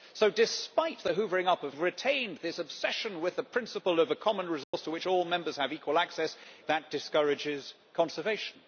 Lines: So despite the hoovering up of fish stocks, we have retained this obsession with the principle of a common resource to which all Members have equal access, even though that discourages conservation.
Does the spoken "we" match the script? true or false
false